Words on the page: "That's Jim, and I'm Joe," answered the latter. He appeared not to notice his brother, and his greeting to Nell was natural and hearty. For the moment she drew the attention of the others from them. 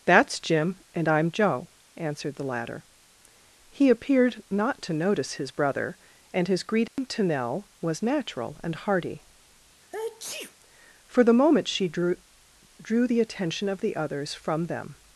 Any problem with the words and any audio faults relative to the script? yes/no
yes